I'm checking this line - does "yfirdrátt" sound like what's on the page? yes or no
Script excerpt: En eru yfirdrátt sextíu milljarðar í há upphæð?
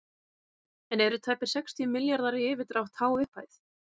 no